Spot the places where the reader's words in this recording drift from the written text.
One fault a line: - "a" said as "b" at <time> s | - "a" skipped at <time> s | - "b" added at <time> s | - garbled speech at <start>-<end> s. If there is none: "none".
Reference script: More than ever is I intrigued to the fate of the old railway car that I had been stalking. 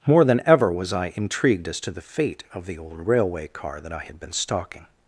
- "is" said as "was" at 0.7 s
- "as" added at 1.7 s